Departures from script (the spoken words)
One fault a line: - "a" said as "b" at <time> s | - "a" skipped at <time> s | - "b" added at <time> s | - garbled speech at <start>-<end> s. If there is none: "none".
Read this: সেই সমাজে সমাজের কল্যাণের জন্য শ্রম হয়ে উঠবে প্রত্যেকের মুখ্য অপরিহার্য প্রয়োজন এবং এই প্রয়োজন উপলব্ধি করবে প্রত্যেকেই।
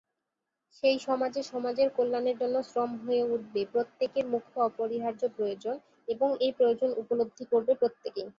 none